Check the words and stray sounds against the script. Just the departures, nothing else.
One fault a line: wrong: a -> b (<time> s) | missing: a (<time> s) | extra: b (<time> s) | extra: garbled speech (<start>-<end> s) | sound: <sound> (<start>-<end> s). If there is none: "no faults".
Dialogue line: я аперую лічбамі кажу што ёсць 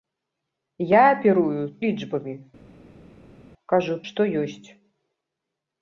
no faults